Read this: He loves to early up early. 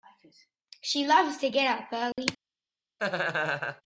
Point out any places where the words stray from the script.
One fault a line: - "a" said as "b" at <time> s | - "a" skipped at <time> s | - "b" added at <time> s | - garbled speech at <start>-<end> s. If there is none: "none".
- "He" said as "She" at 0.8 s
- "early" said as "get" at 1.5 s